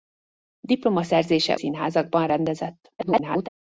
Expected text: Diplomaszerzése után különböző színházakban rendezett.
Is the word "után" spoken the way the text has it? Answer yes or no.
no